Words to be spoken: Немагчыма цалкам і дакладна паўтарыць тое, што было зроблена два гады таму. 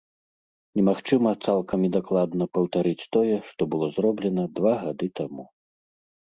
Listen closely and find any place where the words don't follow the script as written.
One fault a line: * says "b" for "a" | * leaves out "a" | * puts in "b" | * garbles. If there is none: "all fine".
all fine